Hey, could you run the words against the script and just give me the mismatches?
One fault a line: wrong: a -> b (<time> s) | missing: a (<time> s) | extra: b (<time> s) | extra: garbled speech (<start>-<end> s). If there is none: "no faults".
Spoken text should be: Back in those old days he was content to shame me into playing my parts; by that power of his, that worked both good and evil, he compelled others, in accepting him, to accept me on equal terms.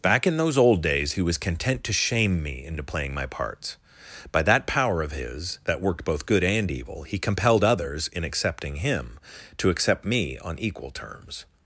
no faults